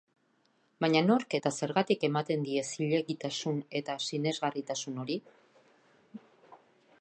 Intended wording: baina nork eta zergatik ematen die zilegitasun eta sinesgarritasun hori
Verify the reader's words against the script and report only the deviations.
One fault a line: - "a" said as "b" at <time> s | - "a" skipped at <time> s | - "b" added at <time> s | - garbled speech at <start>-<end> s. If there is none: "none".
none